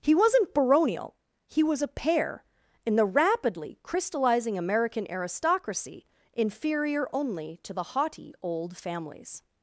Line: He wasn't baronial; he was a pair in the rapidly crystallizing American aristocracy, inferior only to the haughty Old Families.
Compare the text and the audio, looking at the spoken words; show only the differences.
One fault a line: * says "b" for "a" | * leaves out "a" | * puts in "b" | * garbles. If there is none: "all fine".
all fine